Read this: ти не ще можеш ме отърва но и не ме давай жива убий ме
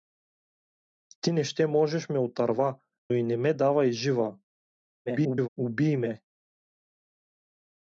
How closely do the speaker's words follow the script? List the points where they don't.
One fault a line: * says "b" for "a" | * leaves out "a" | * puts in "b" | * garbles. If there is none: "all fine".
* leaves out "но"
* garbles